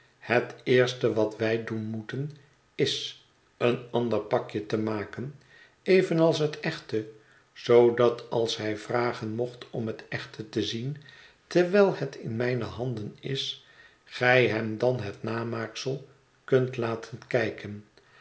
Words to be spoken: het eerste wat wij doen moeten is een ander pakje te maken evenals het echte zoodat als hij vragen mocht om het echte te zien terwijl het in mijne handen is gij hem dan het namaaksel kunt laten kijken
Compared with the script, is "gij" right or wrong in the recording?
right